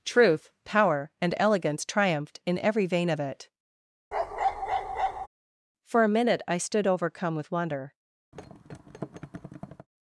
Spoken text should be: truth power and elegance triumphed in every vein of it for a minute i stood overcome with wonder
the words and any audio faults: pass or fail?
fail